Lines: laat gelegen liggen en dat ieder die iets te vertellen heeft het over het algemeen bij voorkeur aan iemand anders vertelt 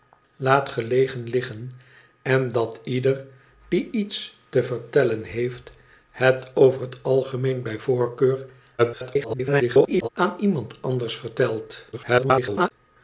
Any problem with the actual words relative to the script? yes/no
yes